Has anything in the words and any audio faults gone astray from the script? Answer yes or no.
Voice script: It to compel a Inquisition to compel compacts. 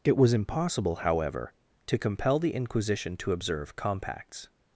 yes